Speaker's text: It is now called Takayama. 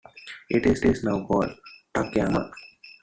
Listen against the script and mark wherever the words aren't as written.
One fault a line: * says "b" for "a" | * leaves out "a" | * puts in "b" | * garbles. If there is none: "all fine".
* puts in "is"